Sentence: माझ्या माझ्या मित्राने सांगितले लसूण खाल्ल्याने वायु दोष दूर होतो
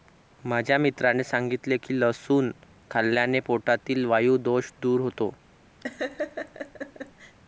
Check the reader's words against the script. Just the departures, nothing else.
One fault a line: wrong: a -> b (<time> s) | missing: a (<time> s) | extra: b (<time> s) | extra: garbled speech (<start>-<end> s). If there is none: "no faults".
missing: माझ्या (0.8 s)
extra: की (1.8 s)
extra: पोटातील (3.4 s)